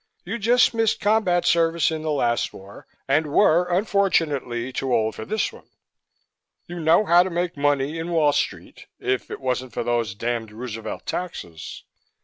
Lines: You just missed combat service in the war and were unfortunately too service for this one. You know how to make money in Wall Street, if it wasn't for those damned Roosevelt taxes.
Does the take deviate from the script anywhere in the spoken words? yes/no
yes